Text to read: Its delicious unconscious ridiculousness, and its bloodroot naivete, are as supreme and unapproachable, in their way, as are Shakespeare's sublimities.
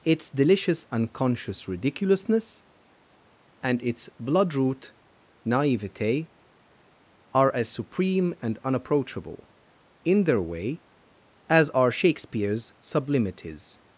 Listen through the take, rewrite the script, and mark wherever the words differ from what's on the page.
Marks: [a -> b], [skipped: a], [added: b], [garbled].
Its delicious unconscious ridiculousness, and its bloodroot naivete, are as supreme and unapproachable, in their way, as are Shakespeare's sublimities.